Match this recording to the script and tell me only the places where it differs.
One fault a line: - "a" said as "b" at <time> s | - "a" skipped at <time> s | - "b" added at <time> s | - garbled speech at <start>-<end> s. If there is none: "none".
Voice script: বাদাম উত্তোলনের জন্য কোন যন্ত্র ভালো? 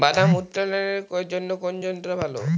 none